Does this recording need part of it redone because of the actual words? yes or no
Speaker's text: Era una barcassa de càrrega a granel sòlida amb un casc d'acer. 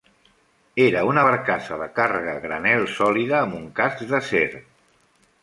no